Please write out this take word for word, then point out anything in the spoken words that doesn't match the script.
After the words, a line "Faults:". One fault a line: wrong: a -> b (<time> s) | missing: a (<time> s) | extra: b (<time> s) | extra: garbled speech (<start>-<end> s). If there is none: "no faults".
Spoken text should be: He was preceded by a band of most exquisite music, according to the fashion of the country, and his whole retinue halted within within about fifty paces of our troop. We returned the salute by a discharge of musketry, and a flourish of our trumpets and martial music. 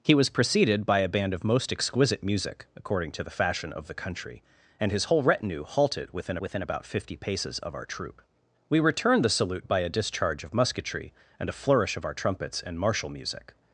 He was preceded by a band of most exquisite music, according to the fashion of the country, and his whole retinue halted within within about fifty paces of our troop. We returned the salute by a discharge of musketry, and a flourish of our trumpets and martial music.
Faults:
no faults